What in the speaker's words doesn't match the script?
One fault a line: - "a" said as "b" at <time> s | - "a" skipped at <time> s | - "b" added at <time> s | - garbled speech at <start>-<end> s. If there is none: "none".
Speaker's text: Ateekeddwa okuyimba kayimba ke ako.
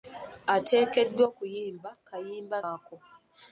- "ke" skipped at 2.6 s